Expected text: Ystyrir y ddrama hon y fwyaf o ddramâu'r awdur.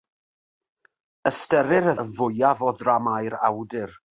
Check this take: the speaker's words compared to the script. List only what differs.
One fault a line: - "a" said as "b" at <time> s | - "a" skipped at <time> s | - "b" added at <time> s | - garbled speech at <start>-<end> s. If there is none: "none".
- "ddrama hon" skipped at 1.9 s